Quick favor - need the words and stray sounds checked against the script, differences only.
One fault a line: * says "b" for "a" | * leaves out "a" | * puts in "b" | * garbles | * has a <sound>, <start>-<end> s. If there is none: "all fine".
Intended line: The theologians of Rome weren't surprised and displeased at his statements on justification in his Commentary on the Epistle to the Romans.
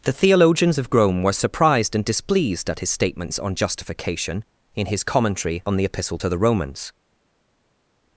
* says "were" for "weren't"